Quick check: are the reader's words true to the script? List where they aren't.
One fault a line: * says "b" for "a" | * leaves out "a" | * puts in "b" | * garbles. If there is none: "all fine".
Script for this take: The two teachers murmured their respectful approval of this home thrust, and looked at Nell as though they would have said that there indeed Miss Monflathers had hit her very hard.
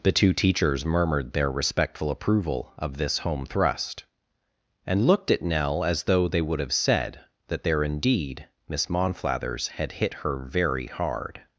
all fine